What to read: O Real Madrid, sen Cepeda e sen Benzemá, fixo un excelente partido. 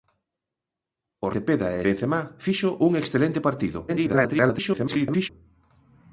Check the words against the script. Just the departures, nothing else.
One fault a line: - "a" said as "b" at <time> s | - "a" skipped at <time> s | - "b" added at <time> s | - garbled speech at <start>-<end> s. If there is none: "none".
- "Real Madrid sen" skipped at 1.3 s
- "sen" skipped at 1.8 s
- garbled speech at 3.9-5.3 s